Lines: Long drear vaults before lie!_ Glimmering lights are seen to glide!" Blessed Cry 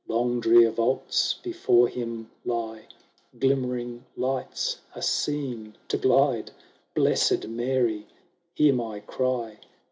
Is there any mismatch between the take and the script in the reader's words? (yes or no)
yes